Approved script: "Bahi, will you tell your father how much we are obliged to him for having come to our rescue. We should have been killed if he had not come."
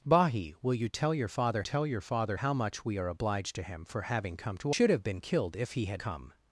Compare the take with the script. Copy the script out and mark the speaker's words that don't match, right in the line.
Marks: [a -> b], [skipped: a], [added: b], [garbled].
"Bahi, will you tell your father [added: tell your father] how much we are obliged to him for having come to [skipped: our rescue. We] should have been killed if he had [skipped: not] come."